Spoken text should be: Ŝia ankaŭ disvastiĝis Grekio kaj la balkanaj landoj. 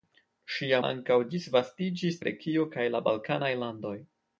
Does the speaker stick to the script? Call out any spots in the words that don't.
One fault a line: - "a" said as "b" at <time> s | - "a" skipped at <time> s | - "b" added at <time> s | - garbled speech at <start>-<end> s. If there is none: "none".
none